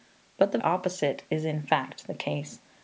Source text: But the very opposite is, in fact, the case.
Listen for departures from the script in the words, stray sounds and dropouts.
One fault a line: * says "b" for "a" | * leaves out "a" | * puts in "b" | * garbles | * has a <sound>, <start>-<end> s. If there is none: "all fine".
* leaves out "very"